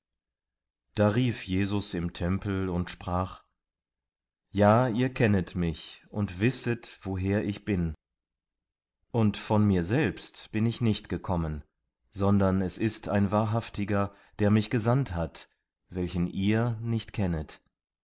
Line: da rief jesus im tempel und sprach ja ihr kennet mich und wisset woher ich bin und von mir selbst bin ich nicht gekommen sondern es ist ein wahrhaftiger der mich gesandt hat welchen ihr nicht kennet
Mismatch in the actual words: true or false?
false